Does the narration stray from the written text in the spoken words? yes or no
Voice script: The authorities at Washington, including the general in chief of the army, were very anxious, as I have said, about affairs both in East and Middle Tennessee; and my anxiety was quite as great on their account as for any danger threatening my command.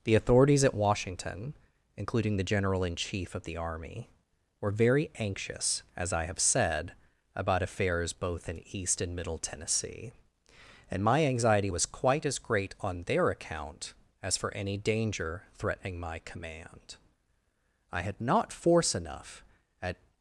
yes